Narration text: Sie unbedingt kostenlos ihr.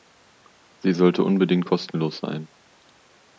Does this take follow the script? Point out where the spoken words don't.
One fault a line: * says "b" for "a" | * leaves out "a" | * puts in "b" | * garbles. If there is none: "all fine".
* puts in "sollte"
* says "sein" for "ihr"